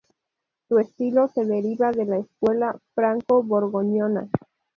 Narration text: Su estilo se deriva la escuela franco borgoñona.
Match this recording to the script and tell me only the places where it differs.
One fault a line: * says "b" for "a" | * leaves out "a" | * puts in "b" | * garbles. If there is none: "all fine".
* puts in "de"